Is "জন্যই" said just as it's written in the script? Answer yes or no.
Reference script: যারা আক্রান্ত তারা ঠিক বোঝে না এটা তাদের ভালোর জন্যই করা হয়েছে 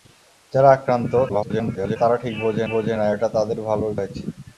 no